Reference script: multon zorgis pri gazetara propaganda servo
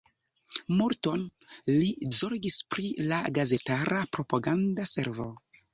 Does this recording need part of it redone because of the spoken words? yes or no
yes